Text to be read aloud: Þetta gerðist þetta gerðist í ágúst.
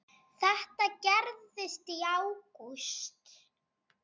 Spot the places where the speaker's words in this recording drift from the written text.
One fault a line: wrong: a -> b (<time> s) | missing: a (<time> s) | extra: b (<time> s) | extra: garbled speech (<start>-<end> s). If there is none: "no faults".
missing: þetta gerðist (1.9 s)